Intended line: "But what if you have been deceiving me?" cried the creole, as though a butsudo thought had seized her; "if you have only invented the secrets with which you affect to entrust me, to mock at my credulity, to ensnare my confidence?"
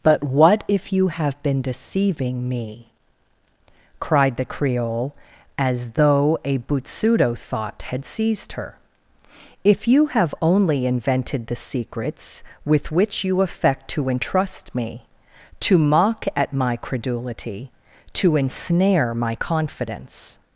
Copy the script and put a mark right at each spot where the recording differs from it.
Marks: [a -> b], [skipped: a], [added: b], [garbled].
"But what if you have been deceiving me?" cried the creole, as though a butsudo thought had seized her; "if you have only invented the secrets with which you affect to entrust me, to mock at my credulity, to ensnare my confidence?"